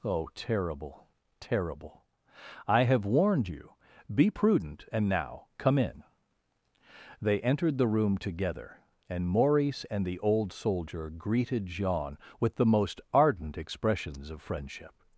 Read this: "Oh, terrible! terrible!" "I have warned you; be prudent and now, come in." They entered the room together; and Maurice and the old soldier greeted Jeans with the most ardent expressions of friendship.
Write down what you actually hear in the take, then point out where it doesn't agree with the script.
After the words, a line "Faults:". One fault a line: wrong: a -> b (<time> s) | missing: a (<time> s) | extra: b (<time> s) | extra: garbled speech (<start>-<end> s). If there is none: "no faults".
"Oh, terrible! terrible!" "I have warned you; be prudent and now, come in." They entered the room together; and Maurice and the old soldier greeted Jean with the most ardent expressions of friendship.
Faults:
wrong: Jeans -> Jean (11.7 s)